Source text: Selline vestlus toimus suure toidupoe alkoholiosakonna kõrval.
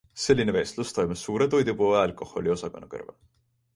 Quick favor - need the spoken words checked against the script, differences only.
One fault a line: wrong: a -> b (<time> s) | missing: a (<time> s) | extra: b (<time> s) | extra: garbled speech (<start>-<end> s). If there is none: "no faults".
no faults